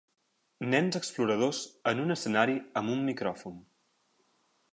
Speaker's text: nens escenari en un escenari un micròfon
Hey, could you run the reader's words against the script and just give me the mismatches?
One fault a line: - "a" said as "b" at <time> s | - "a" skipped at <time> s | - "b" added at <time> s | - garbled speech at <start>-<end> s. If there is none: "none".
- "escenari" said as "exploradors" at 1.0 s
- "amb" added at 2.8 s